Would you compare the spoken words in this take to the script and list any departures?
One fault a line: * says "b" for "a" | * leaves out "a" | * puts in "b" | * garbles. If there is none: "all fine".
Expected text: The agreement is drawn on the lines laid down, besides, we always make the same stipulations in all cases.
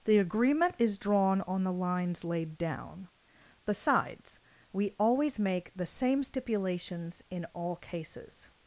all fine